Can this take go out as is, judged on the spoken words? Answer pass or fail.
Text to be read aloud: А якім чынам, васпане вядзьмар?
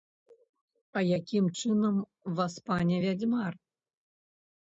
pass